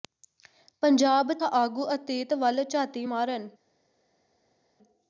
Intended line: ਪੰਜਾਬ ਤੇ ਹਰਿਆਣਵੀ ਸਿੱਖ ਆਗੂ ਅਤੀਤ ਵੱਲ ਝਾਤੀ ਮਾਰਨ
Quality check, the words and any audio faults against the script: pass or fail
fail